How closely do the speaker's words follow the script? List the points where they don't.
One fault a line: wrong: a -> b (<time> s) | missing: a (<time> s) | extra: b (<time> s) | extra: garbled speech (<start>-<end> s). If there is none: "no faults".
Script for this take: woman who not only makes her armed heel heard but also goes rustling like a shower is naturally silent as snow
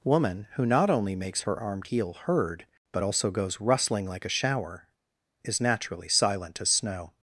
no faults